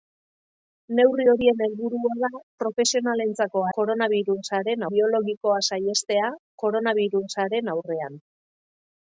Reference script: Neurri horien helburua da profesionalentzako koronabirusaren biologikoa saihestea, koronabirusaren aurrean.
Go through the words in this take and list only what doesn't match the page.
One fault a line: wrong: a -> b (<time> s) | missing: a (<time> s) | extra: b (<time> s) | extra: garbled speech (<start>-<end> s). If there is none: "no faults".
no faults